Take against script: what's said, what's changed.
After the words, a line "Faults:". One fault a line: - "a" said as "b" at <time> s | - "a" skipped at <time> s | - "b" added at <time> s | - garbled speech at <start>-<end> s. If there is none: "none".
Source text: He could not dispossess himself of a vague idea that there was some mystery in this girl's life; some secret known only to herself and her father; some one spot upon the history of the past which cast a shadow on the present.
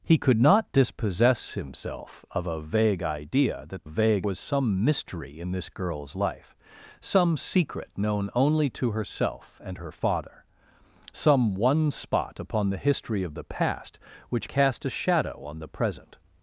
He could not dispossess himself of a vague idea that vague was some mystery in this girl's life; some secret known only to herself and her father; some one spot upon the history of the past which cast a shadow on the present.
Faults:
- "there" said as "vague" at 3.8 s